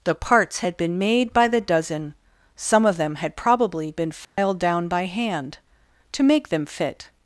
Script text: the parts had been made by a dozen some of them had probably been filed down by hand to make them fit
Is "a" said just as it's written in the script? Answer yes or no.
no